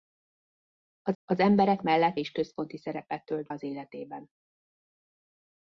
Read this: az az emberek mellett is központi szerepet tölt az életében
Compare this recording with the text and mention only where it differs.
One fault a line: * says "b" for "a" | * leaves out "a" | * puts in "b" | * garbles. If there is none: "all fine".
all fine